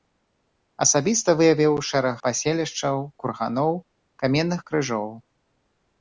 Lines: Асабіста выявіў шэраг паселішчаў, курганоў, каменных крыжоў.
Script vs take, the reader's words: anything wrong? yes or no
no